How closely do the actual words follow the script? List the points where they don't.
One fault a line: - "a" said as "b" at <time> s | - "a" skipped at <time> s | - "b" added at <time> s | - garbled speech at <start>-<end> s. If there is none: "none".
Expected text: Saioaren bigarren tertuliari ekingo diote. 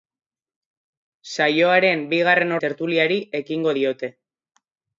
none